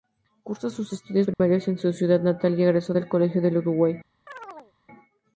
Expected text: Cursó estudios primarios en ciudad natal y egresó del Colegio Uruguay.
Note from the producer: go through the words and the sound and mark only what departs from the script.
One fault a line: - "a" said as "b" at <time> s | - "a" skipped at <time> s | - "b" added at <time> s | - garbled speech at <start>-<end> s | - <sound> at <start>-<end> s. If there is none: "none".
- "sus" added at 0.7 s
- dropout at 1.3-1.4 s
- "su" added at 1.8 s
- "del" added at 3.4 s
- chirp at 4.3-4.7 s